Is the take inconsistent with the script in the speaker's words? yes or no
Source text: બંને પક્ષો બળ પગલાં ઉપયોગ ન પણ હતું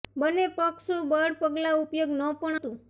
no